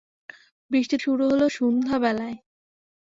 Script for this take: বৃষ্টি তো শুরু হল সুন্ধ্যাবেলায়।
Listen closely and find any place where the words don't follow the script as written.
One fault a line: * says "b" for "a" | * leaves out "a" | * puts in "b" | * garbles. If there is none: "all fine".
* leaves out "তো"